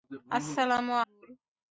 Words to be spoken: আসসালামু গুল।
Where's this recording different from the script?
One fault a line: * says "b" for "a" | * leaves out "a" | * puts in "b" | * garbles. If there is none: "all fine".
all fine